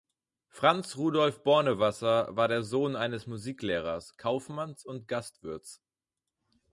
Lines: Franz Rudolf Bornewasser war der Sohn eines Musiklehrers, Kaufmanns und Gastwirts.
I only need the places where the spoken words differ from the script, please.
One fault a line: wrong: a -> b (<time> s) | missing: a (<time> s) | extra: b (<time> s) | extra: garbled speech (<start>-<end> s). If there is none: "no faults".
no faults